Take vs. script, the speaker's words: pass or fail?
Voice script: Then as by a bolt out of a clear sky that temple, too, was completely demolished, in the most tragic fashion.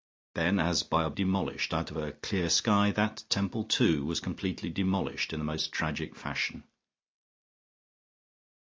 fail